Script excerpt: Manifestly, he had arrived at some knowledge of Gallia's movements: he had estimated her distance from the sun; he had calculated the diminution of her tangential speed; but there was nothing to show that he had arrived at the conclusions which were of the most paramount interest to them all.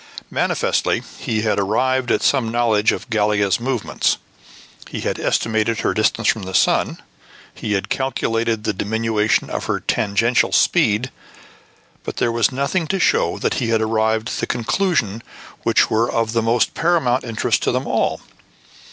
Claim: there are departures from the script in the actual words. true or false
false